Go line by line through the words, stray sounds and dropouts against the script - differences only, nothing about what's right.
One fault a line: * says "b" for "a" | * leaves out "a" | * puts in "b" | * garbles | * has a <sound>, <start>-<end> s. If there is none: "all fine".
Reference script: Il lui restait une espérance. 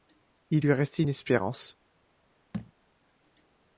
* has a thud, 2.5-2.7 s